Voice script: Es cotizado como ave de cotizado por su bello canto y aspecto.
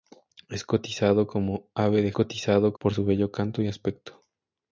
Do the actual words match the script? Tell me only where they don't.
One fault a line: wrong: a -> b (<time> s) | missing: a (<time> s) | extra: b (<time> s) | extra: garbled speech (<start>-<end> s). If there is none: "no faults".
no faults